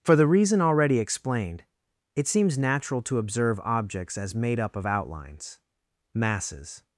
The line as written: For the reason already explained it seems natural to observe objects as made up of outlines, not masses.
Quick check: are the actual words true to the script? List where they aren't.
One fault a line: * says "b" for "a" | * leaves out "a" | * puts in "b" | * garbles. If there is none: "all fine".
* leaves out "not"